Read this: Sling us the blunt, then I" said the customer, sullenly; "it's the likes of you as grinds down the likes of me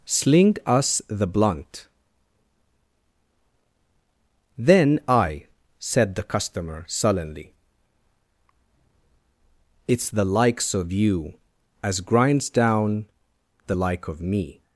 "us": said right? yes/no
yes